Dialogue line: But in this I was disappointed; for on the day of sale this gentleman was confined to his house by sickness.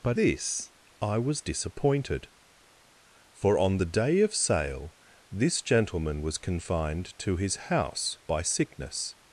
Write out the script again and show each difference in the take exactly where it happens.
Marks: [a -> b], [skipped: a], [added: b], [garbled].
But [skipped: in] this I was disappointed; for on the day of sale this gentleman was confined to his house by sickness.